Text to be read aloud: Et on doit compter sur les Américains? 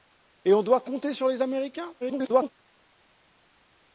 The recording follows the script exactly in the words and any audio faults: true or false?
false